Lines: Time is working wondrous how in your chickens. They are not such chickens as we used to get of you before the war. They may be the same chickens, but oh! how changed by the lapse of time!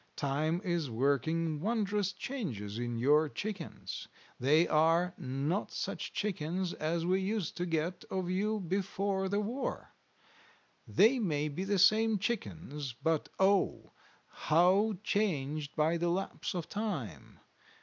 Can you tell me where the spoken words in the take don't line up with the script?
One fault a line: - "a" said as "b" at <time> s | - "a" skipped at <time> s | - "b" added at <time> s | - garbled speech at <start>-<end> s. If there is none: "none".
- "how" said as "changes" at 2.1 s